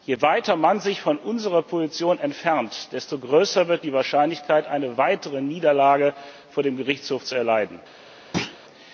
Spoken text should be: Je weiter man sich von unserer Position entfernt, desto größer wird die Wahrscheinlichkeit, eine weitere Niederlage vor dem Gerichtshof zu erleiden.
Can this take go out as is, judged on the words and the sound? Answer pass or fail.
fail